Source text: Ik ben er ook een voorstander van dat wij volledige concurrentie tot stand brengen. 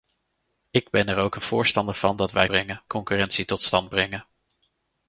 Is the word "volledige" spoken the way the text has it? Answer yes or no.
no